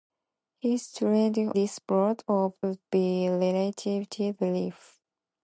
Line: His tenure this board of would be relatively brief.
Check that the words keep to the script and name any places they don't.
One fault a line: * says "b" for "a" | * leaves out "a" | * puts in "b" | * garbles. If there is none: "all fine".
all fine